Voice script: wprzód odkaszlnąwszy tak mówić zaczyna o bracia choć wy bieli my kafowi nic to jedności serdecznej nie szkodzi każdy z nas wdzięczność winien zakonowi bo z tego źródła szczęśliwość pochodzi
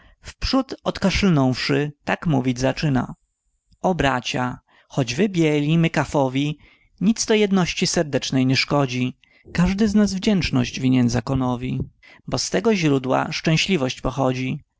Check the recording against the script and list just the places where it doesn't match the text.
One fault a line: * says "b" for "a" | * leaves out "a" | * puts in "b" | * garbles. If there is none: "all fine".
all fine